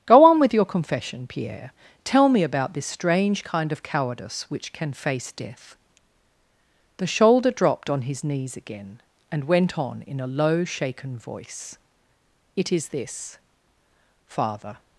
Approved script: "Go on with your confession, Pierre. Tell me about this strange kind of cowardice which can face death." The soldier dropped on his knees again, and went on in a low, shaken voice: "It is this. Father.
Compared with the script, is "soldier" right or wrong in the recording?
wrong